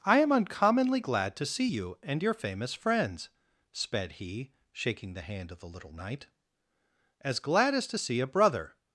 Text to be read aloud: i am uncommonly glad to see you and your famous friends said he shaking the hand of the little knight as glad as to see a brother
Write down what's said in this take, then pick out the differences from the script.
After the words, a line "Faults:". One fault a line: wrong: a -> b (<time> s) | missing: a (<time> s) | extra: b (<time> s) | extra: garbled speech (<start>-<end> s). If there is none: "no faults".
i am uncommonly glad to see you and your famous friends sped he shaking the hand of the little knight as glad as to see a brother
Faults:
wrong: said -> sped (3.7 s)